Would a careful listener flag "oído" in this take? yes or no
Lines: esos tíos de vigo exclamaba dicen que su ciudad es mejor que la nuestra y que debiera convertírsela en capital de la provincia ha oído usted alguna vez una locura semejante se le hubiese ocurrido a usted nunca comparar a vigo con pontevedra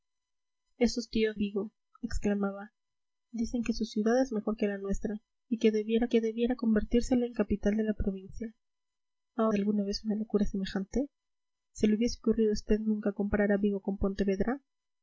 yes